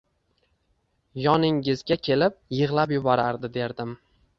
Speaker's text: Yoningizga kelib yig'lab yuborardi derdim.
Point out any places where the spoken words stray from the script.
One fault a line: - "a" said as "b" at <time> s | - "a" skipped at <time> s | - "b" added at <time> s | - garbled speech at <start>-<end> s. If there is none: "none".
none